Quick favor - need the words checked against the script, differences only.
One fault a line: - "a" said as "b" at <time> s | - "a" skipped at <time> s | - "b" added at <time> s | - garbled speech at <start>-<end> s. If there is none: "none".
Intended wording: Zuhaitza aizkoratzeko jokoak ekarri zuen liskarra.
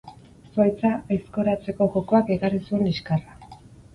none